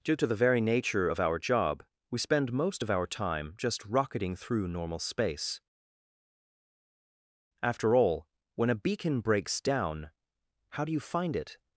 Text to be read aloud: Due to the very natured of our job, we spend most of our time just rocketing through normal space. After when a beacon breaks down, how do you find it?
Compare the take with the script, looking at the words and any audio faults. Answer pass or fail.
fail